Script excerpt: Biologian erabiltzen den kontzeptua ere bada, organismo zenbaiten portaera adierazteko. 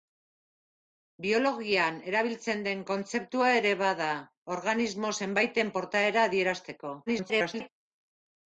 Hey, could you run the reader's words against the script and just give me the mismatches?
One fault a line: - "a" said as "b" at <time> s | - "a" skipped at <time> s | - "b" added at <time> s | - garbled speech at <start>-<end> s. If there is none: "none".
- garbled speech at 7.1-7.7 s